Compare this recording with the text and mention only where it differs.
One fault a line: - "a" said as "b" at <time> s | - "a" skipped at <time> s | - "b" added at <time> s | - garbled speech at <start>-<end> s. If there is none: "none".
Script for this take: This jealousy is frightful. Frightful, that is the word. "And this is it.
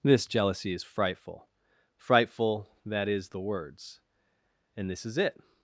- "word" said as "words" at 3.4 s